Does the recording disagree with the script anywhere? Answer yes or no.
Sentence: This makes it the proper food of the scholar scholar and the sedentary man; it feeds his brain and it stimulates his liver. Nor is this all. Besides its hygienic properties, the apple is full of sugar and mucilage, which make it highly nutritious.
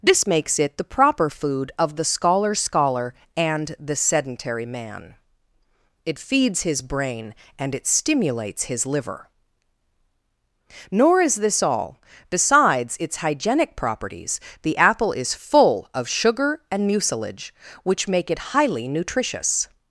no